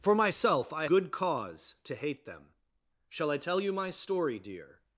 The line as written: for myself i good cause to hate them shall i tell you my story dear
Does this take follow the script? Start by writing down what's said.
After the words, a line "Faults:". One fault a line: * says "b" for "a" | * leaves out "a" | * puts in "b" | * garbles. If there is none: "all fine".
for myself i good cause to hate them shall i tell you my story dear
Faults:
all fine